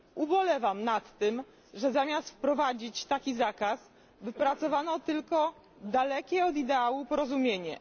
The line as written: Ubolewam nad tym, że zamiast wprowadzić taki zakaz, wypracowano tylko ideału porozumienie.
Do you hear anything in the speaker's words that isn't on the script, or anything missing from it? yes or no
yes